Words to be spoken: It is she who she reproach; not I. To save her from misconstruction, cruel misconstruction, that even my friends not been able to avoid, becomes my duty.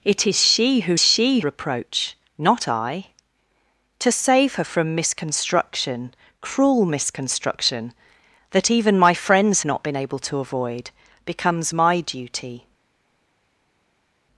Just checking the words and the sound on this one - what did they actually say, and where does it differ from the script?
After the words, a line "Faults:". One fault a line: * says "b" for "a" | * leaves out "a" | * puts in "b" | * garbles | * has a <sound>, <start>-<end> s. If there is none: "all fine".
It is she who she reproach; not I. To save her from misconstruction, cruel misconstruction, that even my friends not been able to avoid, becomes my duty.
Faults:
all fine